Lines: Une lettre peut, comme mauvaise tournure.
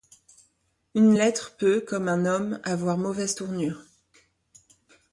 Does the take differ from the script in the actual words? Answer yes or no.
yes